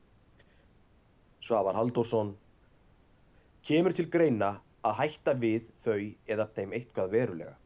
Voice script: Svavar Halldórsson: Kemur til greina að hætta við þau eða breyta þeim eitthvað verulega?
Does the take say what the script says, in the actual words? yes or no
no